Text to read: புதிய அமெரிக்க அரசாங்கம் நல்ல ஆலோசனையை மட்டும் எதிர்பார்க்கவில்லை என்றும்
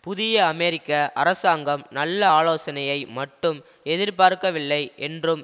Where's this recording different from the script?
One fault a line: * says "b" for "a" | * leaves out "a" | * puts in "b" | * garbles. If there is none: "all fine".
all fine